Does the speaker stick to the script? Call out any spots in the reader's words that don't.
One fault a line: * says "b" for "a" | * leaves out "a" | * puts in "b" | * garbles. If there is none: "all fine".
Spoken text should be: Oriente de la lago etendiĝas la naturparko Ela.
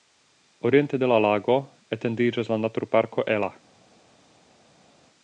all fine